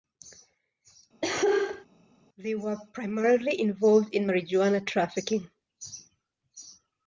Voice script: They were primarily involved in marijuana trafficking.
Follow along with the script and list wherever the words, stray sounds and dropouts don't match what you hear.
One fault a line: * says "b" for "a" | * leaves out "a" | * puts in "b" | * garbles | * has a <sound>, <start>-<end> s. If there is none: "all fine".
* has a cough, 1.2-1.9 s